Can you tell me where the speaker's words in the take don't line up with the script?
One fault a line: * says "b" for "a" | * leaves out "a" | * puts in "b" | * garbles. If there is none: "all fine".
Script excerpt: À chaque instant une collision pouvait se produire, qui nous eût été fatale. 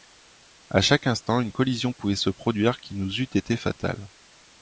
all fine